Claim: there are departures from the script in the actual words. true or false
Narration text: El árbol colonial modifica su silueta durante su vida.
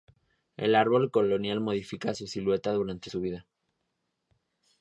false